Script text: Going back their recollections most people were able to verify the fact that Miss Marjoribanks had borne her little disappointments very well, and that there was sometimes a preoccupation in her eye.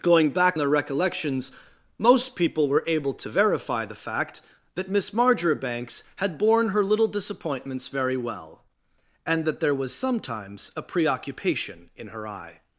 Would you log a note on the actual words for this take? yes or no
no